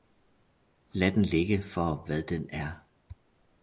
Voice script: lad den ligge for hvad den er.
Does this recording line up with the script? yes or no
yes